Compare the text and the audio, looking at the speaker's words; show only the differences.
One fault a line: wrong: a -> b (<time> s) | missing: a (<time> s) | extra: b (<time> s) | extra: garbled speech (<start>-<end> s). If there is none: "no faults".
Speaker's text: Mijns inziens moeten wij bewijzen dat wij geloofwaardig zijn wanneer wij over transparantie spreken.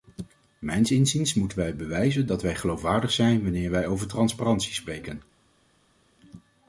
no faults